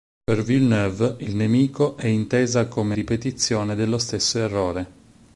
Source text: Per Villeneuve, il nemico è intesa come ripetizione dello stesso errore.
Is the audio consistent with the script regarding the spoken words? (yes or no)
yes